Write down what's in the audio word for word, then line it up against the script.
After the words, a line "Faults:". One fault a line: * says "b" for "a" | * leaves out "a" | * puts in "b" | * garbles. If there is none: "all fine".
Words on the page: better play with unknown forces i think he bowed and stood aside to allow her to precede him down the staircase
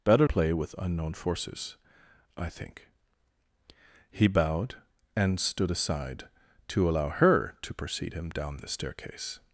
better play with unknown forces i think he bowed and stood aside to allow her to precede him down the staircase
Faults:
all fine